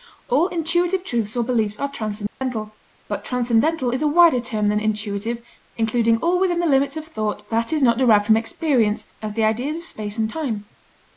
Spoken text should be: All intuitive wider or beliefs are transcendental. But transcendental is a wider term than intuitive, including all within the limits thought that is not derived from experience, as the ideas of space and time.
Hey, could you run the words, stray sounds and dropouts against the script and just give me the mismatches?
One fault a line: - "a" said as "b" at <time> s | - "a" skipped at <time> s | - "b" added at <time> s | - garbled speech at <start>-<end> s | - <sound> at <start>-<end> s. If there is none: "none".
- "wider" said as "truths" at 1.0 s
- dropout at 2.3-2.4 s
- "of" added at 7.0 s